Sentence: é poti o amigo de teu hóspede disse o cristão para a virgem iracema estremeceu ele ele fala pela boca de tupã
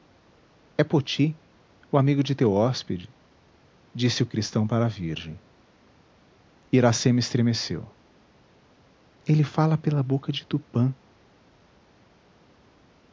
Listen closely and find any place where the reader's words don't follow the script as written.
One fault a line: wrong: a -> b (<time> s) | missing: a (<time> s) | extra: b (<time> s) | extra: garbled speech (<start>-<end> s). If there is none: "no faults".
missing: ele (9.4 s)